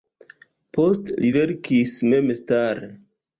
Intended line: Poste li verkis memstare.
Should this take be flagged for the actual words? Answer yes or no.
no